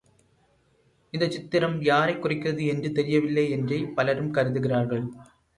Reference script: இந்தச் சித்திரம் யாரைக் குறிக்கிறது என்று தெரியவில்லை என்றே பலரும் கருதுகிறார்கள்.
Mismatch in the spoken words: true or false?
false